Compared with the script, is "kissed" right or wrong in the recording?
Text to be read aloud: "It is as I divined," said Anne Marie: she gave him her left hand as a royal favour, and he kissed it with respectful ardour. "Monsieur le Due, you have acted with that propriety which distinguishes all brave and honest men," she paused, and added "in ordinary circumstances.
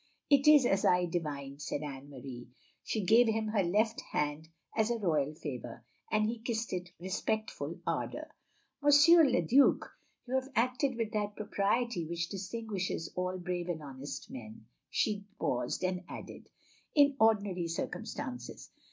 right